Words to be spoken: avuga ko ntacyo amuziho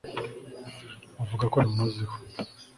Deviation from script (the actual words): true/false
true